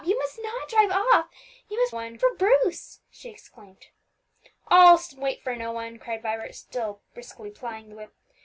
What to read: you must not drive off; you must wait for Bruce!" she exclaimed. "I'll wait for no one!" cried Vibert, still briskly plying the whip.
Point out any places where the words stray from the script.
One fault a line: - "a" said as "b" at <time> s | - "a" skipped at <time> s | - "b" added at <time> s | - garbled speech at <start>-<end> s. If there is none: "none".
- "wait" said as "one" at 1.9 s